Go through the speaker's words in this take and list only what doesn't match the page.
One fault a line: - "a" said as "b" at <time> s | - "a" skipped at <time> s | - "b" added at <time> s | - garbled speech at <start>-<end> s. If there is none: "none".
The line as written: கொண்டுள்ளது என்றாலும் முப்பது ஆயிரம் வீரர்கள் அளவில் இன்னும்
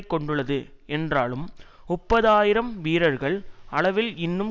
none